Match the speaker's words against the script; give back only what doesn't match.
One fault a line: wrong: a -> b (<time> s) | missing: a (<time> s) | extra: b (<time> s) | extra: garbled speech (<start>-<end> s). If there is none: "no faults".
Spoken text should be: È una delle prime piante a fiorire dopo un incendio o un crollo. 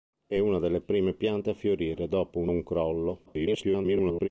missing: incendio (2.5 s)
extra: garbled speech (3.3-4.3 s)